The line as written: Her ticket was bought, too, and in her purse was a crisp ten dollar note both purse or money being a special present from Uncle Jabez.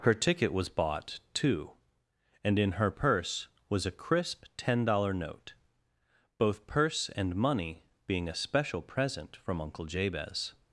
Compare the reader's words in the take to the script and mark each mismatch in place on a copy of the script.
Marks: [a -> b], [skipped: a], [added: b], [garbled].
Her ticket was bought, too, and in her purse was a crisp ten dollar note both purse [or -> and] money being a special present from Uncle Jabez.